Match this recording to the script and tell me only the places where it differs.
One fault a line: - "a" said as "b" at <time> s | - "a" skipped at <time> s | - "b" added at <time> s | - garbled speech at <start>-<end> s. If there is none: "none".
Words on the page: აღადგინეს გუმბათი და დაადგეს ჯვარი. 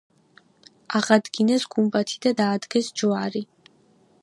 none